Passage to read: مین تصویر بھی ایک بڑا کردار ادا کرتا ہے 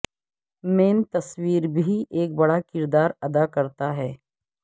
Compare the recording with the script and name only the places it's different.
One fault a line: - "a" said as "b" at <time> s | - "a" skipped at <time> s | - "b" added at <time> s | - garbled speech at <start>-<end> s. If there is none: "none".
none